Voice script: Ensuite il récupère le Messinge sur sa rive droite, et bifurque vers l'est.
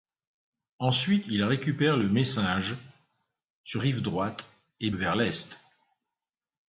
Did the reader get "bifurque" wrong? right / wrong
wrong